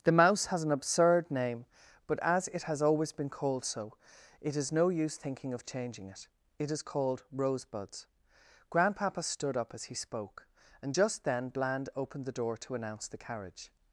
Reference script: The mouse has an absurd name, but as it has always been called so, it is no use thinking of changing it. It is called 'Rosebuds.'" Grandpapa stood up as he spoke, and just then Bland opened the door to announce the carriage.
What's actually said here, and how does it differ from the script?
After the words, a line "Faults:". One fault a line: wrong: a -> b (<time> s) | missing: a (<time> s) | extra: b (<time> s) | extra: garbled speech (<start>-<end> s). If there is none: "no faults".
The mouse has an absurd name, but as it has always been called so, it is no use thinking of changing it. It is called 'Rosebuds.'" Grandpapa stood up as he spoke, and just then Bland opened the door to announce the carriage.
Faults:
no faults